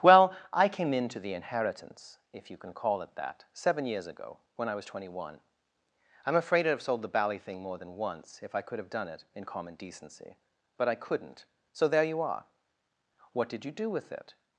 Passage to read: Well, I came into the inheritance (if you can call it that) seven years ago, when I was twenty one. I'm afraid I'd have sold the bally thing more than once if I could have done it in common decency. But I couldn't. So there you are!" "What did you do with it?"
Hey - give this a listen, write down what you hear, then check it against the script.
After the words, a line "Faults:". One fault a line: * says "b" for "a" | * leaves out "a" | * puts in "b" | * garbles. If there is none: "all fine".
Well, I came into the inheritance (if you can call it that) seven years ago, when I was twenty one. I'm afraid I'd have sold the bally thing more than once if I could have done it in common decency. But I couldn't. So there you are!" "What did you do with it?"
Faults:
all fine